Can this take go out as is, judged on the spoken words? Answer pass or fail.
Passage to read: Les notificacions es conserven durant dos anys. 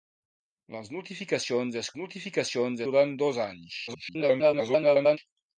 fail